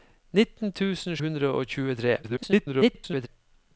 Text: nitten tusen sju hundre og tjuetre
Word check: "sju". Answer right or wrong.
wrong